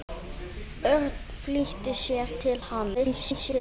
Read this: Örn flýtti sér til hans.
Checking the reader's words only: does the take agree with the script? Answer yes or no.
no